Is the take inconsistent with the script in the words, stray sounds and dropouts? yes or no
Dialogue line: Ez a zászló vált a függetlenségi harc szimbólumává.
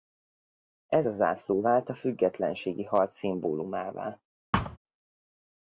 yes